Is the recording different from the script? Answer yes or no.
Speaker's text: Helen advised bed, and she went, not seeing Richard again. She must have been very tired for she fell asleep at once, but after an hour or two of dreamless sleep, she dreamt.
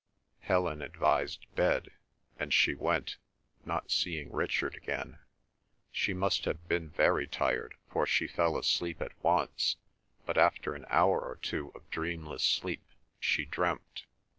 no